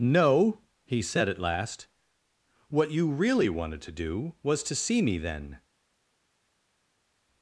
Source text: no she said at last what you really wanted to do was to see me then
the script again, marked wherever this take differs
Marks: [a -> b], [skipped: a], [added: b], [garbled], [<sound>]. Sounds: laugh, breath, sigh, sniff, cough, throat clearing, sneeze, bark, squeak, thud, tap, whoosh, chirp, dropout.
no [she -> he] said at last what you really wanted to do was to see me then